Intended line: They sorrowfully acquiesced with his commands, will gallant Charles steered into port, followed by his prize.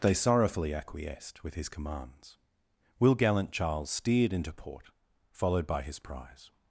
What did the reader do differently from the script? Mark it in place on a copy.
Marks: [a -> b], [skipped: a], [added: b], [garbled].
They sorrowfully acquiesced with his commands, will gallant Charles steered into port, followed by his prize.